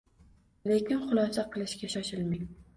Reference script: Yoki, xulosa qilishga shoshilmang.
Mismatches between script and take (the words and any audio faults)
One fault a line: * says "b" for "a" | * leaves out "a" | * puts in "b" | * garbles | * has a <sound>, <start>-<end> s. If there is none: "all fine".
* says "Lekin" for "Yoki"